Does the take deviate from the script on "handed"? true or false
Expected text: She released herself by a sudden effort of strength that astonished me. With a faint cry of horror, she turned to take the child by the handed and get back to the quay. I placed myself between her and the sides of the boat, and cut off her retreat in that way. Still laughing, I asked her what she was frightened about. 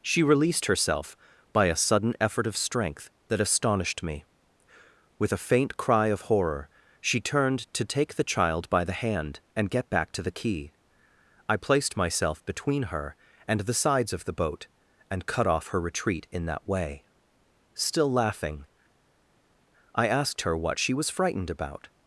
true